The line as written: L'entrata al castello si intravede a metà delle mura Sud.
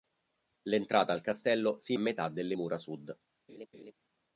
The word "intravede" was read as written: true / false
false